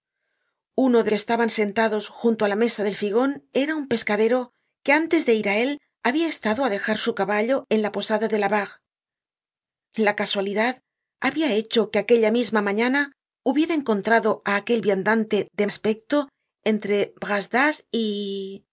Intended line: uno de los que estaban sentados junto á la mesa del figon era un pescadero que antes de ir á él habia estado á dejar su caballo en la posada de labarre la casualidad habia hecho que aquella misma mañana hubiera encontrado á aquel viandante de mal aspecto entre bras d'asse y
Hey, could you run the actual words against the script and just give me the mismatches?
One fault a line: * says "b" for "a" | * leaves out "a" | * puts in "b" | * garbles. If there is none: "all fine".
* leaves out "los"
* leaves out "mal"